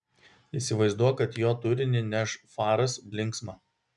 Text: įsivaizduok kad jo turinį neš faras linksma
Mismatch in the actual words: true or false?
false